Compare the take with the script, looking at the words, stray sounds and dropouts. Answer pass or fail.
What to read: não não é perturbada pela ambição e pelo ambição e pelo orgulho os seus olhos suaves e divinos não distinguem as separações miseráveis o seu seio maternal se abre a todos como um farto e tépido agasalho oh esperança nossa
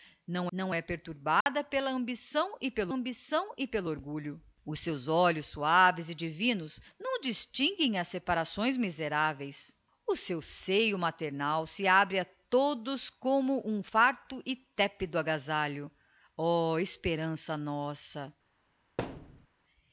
fail